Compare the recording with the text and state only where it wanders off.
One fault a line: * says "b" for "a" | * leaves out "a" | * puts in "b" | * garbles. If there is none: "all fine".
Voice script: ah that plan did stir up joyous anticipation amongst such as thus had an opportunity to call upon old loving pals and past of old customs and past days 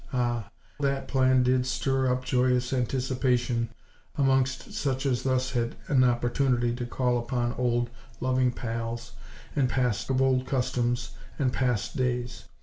all fine